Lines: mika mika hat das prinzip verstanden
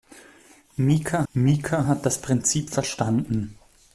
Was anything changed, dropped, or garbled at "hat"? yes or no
no